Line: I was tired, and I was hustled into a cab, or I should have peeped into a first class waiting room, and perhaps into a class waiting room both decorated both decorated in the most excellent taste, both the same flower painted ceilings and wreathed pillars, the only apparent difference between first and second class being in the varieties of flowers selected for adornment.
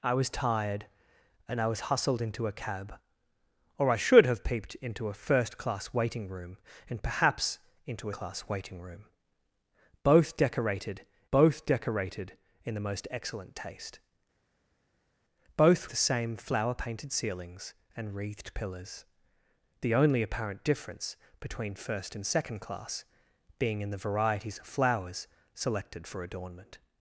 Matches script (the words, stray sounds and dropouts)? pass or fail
pass